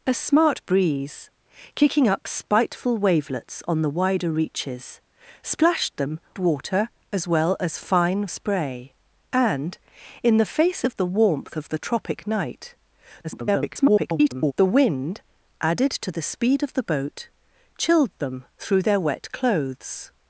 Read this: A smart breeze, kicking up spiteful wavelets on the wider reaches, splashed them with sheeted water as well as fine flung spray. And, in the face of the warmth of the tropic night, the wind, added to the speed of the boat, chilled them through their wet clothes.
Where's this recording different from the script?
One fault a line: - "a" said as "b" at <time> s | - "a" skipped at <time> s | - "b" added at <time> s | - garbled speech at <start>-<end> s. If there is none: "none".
- "with sheeted" skipped at 6.2 s
- "flung" skipped at 8.3 s
- garbled speech at 13.2-14.5 s